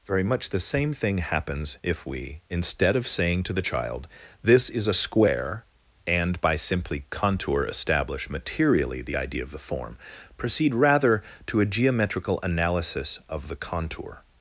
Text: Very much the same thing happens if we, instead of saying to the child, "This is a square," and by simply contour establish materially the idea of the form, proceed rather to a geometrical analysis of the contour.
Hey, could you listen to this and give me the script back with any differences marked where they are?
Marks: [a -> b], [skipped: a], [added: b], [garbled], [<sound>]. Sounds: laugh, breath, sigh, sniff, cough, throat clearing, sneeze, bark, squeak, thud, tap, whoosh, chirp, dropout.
Very much the same thing happens if we, instead of saying to the child, "This is a square," and by simply contour establish materially the idea of the form, proceed rather to a geometrical analysis of the contour.